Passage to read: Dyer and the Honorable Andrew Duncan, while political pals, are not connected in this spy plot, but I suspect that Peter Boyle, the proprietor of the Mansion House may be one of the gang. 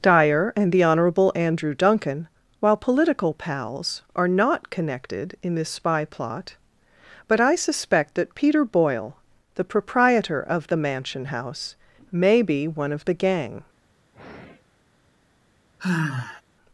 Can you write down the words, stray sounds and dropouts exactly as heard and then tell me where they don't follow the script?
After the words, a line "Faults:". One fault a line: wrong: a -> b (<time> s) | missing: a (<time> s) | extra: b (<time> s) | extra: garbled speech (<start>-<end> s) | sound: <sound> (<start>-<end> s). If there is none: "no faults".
Dyer and the Honorable Andrew Duncan, while political pals, are not connected in this spy plot, but I suspect that Peter Boyle, the proprietor of the Mansion House may be one of the gang.
Faults:
sound: sigh (14.1-14.8 s)
sound: sigh (15.8-16.4 s)